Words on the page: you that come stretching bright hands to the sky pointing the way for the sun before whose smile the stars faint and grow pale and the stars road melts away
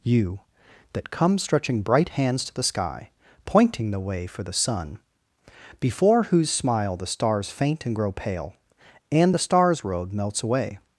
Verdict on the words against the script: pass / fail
pass